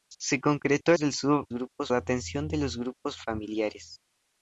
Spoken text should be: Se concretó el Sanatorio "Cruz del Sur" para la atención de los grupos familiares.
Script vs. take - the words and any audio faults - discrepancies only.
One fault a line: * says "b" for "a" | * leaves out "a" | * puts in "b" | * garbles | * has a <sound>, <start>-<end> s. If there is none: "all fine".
* leaves out "el Sanatorio Cruz"
* says "grupos" for "para"